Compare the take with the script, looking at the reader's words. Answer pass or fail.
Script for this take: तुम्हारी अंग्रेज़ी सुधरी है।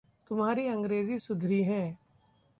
pass